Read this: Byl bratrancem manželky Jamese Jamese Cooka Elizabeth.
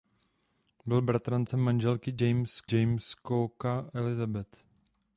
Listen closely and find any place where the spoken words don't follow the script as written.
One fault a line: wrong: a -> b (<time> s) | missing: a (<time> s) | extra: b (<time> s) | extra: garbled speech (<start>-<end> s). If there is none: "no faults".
no faults